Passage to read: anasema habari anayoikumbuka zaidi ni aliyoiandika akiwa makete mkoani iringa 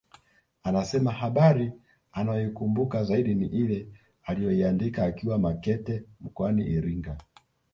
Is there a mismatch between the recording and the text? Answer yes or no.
yes